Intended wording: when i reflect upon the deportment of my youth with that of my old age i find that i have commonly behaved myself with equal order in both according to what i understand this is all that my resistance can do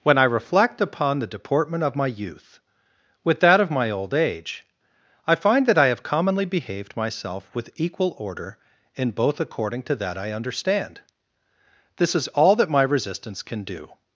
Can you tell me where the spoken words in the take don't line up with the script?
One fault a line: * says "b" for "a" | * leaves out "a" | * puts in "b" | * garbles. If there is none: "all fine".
* says "that" for "what"